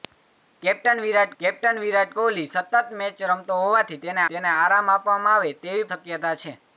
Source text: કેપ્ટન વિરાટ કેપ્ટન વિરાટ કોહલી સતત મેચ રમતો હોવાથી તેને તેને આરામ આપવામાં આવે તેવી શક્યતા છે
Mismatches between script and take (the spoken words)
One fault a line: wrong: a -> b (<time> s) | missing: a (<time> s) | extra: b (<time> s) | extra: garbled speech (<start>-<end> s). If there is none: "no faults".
no faults